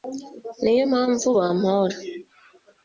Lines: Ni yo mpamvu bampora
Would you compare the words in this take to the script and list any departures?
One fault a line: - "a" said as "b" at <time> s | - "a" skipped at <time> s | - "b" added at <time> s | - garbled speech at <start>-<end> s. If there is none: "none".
none